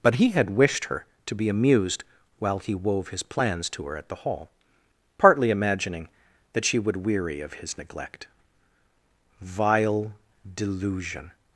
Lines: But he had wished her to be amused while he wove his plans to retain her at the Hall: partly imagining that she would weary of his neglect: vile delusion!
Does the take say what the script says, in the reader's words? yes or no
no